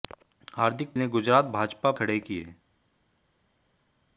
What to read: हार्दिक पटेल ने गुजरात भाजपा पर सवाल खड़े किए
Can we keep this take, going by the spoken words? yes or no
no